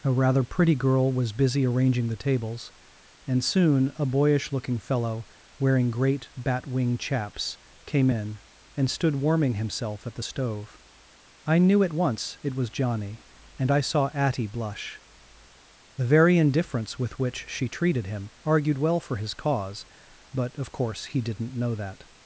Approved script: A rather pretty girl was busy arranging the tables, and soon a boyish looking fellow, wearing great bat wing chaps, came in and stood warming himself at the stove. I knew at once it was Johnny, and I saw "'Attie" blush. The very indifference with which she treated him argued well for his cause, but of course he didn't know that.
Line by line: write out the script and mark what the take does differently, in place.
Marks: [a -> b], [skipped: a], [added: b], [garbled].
A rather pretty girl was busy arranging the tables, and soon a boyish looking fellow, wearing great bat wing chaps, came in and stood warming himself at the stove. I knew at once it was Johnny, and I saw "'Attie" blush. The very indifference with which she treated him argued well for his cause, but of course he didn't know that.